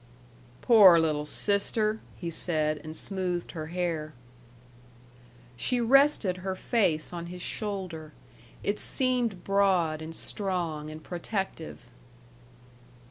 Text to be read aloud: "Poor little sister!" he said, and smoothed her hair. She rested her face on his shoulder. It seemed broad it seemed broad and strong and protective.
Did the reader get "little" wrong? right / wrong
right